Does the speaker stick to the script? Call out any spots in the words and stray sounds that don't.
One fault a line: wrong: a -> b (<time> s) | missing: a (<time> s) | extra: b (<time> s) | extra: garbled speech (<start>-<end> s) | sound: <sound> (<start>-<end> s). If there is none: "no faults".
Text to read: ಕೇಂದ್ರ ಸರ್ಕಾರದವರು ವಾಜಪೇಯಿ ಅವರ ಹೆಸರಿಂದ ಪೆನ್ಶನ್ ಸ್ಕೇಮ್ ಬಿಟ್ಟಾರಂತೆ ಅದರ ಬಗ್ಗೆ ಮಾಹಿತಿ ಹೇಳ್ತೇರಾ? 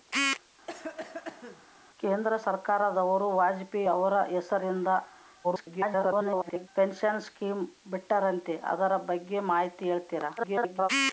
sound: cough (0.7-1.7 s)
extra: garbled speech (5.4-6.7 s)
extra: garbled speech (10.4-10.9 s)